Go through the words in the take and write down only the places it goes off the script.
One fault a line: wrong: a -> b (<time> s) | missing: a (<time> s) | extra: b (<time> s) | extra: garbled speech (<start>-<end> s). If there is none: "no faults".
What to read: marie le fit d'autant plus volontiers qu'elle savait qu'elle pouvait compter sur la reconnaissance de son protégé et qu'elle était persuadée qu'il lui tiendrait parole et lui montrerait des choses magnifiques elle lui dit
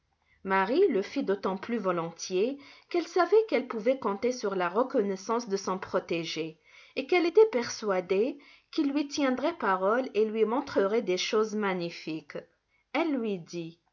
no faults